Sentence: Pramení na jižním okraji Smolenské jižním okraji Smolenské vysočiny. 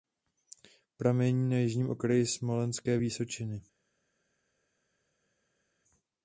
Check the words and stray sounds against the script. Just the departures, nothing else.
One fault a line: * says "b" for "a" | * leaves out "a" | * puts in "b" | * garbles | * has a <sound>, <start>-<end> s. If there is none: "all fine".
* leaves out "jižním okraji Smolenské"